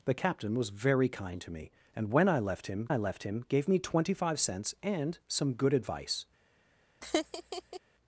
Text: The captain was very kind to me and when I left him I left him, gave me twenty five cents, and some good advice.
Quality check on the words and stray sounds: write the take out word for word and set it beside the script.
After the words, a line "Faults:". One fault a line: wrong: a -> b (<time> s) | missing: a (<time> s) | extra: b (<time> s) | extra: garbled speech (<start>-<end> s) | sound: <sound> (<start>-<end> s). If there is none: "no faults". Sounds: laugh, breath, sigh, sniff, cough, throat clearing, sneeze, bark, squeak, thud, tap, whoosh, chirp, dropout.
The captain was very kind to me and when I left him I left him, gave me twenty five cents, and some good advice.
Faults:
sound: laugh (7.0-7.8 s)